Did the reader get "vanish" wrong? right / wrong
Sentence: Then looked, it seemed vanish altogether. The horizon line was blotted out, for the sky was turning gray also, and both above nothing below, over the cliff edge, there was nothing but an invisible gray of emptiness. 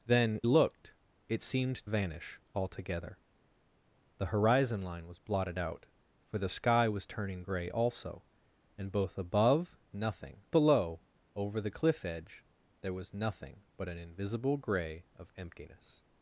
right